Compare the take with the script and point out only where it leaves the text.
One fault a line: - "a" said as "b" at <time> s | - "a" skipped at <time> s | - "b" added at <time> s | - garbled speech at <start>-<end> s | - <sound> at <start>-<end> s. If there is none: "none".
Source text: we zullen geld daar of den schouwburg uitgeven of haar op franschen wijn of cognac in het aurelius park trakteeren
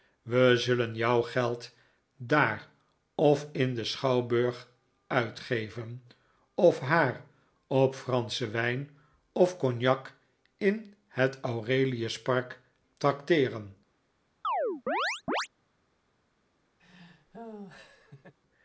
- "jouw" added at 0.9 s
- "in" added at 3.5 s
- chirp at 14.4-15.5 s
- laugh at 16.8-18.3 s